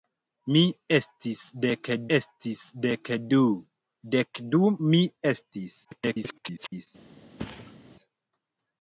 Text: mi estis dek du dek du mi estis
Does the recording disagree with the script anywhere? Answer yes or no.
yes